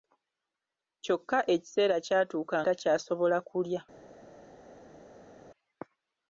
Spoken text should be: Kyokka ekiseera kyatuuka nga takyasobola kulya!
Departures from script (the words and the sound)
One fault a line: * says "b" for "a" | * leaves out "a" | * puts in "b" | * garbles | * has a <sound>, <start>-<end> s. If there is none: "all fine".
* leaves out "nga"